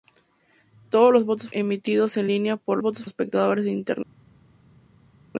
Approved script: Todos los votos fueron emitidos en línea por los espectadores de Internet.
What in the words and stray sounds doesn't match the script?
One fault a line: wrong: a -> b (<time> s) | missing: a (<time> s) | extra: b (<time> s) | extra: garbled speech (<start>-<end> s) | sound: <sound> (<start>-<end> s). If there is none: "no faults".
missing: fueron (1.5 s)
wrong: los -> votos (2.8 s)